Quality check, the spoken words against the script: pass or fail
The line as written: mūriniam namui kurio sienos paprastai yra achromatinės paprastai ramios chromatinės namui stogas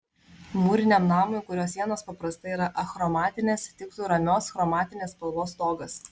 fail